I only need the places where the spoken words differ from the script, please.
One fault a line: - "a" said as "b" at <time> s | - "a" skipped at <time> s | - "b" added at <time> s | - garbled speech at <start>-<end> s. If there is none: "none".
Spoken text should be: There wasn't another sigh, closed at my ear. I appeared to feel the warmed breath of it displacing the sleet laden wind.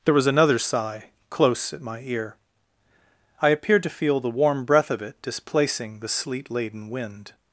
- "wasn't" said as "was" at 0.1 s
- "closed" said as "close" at 1.3 s
- "warmed" said as "warm" at 4.3 s